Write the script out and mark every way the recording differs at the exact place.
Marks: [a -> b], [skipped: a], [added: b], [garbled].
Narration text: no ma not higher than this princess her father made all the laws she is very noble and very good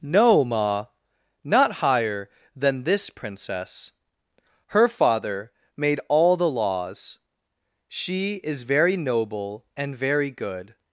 no ma not higher than this princess her father made all the laws she is very noble and very good